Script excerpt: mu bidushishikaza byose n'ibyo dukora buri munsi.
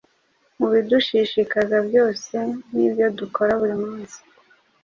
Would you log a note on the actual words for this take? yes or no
no